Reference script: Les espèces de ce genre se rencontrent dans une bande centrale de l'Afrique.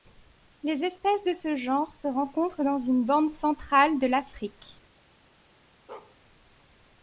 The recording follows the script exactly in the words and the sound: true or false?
false